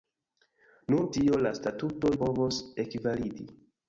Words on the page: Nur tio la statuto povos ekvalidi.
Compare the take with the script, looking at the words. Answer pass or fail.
pass